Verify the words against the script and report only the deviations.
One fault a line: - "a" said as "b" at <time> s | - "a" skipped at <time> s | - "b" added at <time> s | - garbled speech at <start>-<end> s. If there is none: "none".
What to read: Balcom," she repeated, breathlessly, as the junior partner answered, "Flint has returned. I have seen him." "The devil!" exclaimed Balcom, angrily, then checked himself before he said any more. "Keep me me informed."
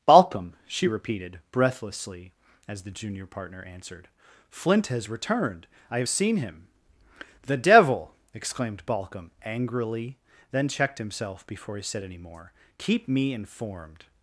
- "me" skipped at 13.3 s